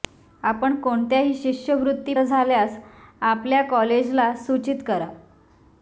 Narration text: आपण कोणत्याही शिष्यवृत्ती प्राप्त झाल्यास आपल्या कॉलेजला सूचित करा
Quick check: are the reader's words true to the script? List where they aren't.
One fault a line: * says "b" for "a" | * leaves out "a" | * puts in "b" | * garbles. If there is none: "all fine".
* leaves out "प्राप्त"